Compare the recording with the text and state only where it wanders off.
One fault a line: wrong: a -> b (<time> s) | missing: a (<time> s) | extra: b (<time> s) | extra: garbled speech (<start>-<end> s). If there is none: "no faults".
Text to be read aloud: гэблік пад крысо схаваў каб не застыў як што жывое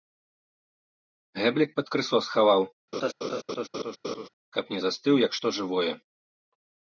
no faults